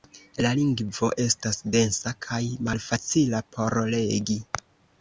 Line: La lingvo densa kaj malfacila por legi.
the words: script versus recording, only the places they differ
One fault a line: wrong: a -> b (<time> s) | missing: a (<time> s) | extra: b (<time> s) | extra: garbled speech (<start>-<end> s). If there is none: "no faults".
extra: estas (1.2 s)